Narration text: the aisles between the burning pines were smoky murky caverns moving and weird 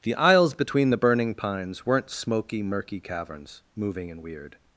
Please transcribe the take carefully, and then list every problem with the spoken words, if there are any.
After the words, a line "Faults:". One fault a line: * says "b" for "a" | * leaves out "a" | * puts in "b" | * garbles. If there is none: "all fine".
the aisles between the burning pines weren't smoky murky caverns moving and weird
Faults:
* says "weren't" for "were"